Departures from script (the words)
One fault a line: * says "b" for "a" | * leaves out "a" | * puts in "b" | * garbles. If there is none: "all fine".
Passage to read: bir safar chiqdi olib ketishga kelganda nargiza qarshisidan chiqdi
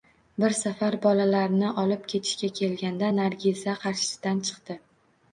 * says "bolalarni" for "chiqdi"